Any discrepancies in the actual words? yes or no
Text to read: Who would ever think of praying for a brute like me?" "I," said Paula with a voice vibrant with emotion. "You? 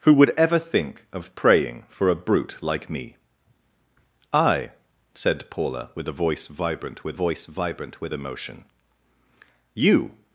yes